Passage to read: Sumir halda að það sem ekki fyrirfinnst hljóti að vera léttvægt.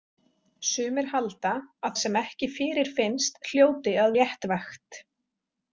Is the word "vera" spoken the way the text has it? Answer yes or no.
no